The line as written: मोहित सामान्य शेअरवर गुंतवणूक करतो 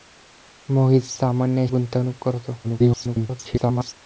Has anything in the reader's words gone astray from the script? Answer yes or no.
yes